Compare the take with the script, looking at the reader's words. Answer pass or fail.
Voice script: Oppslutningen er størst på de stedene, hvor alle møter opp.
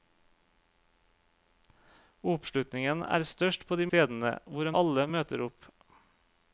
pass